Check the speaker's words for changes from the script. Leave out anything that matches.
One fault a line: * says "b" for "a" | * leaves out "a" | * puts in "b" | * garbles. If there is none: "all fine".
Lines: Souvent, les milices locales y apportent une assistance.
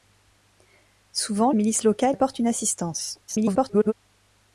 * leaves out "les"
* leaves out "y"
* garbles